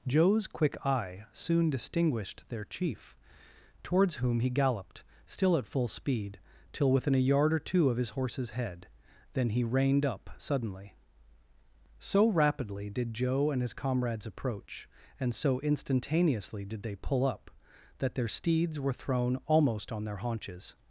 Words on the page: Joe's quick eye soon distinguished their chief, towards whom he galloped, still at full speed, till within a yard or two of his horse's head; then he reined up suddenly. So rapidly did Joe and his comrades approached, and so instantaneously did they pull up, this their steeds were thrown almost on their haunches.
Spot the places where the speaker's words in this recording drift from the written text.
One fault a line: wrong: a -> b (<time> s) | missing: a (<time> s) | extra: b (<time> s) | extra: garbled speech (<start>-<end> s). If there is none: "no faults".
wrong: approached -> approach (14.2 s)
wrong: this -> that (18.0 s)